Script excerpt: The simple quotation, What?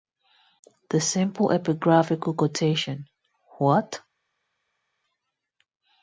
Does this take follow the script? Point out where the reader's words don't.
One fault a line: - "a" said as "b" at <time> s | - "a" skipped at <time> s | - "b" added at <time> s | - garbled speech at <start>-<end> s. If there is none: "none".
- "epigraphical" added at 1.5 s